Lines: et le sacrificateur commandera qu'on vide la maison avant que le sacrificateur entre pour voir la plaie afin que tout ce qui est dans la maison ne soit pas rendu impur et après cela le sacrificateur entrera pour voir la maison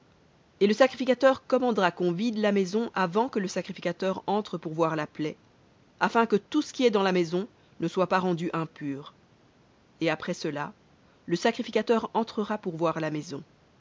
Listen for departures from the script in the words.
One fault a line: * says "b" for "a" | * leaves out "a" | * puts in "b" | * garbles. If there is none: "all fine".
all fine